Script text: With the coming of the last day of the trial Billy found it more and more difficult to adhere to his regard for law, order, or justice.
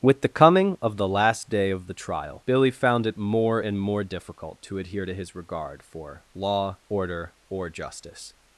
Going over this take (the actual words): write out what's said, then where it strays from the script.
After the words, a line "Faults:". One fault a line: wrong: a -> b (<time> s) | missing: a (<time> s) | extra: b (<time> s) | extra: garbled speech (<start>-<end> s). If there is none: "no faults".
With the coming of the last day of the trial Billy found it more and more difficult to adhere to his regard for law, order, or justice.
Faults:
no faults